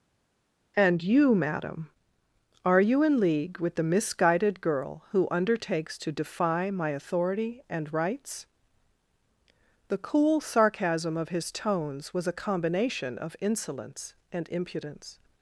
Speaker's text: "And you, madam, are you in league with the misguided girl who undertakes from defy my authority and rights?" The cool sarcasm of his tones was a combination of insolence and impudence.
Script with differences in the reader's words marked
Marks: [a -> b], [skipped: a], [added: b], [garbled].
"And you, madam, are you in league with the misguided girl who undertakes [from -> to] defy my authority and rights?" The cool sarcasm of his tones was a combination of insolence and impudence.